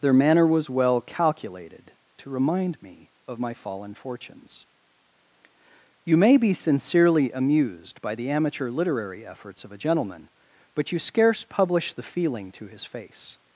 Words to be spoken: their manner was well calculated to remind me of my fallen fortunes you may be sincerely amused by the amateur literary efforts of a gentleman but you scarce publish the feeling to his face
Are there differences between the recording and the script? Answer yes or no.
no